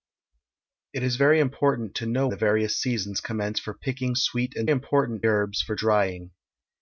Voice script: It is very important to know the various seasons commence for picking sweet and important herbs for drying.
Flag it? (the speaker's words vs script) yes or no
no